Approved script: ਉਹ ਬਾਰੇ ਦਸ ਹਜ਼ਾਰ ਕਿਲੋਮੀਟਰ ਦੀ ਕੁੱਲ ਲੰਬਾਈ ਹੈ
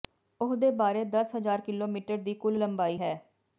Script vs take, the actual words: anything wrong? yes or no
yes